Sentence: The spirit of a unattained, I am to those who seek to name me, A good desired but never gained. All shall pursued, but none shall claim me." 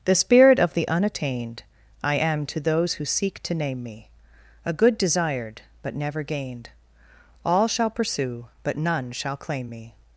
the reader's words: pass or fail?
fail